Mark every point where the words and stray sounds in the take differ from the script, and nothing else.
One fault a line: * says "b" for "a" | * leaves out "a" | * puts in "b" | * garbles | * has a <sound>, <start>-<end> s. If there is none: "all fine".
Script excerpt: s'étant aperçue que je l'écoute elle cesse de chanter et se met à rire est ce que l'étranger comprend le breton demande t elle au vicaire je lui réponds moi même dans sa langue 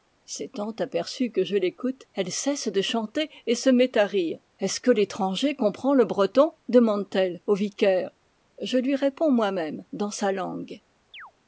* has a chirp, 11.1-11.3 s